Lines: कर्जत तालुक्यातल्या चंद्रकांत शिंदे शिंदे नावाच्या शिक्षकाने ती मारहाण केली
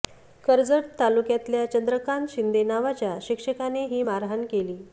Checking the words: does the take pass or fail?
fail